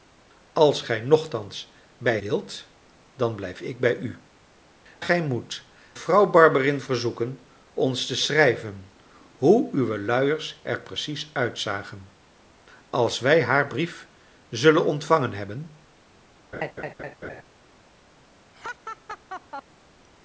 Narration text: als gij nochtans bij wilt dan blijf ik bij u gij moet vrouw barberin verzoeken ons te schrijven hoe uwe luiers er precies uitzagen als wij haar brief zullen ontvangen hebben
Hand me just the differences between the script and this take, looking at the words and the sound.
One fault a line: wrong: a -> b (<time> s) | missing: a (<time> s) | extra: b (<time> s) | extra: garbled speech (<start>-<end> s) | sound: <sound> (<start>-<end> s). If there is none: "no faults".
sound: laugh (16.5-17.4 s)
sound: laugh (18.5-19.6 s)